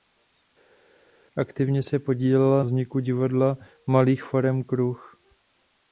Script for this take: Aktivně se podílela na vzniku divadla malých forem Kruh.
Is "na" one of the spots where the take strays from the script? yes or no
yes